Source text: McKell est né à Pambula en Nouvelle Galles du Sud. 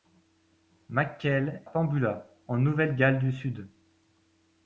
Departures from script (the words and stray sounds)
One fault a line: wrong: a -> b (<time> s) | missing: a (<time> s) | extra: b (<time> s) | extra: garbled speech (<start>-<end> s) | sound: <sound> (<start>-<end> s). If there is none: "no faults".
missing: est né à (1.6 s)